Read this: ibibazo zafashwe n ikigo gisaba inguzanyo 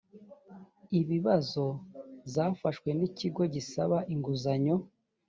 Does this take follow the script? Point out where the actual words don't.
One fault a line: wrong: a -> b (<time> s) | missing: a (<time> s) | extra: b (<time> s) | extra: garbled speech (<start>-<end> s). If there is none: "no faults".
no faults